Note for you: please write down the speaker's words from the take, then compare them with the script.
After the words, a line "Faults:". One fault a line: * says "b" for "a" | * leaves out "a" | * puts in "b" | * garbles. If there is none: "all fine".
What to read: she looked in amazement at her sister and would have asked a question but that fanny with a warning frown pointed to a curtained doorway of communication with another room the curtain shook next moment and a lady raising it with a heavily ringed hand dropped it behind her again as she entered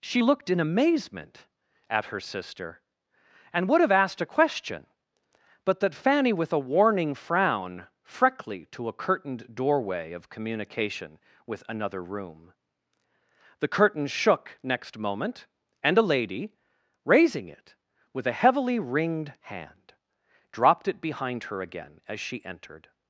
she looked in amazement at her sister and would have asked a question but that fanny with a warning frown freckly to a curtained doorway of communication with another room the curtain shook next moment and a lady raising it with a heavily ringed hand dropped it behind her again as she entered
Faults:
* says "freckly" for "pointed"